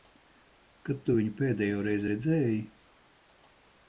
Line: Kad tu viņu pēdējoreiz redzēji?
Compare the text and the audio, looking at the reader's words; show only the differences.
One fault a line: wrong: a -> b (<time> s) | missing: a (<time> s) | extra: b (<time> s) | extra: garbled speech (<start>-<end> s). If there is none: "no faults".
no faults